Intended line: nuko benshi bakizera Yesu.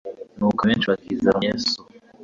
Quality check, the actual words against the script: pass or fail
pass